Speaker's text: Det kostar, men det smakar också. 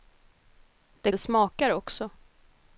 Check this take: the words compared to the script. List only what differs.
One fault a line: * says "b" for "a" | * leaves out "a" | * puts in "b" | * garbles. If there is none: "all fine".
* leaves out "kostar men"